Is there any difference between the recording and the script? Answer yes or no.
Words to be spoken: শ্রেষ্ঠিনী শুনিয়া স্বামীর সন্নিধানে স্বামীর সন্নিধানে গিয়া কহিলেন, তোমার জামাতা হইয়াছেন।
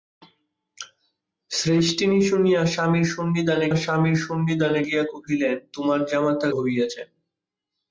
no